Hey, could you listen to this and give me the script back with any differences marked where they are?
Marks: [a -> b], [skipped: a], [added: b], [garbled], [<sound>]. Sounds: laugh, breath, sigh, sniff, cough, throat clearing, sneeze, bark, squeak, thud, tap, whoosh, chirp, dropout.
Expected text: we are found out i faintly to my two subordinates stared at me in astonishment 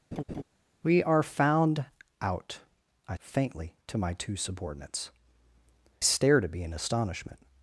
[laugh] we are found out i faintly to my two subordinates stared at me in astonishment